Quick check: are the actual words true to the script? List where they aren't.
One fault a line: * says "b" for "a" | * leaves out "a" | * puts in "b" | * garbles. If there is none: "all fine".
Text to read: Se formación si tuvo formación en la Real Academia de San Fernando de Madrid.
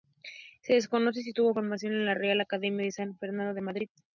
* says "desconoce" for "formación"